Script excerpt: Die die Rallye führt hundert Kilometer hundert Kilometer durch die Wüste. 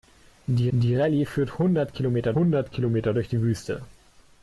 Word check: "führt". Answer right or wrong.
right